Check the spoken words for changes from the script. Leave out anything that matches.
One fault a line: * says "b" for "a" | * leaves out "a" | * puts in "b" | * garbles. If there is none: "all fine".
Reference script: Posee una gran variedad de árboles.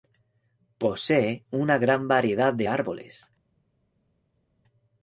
all fine